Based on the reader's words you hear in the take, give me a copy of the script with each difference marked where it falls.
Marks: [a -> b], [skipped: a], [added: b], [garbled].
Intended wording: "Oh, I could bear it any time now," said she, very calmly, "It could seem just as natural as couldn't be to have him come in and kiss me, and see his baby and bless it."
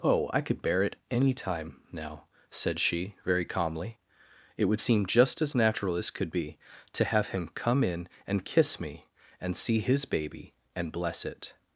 "Oh, I could bear it any time now," said she, very calmly, "It [could -> would] seem just as natural as [couldn't -> could] be to have him come in and kiss me, and see his baby and bless it."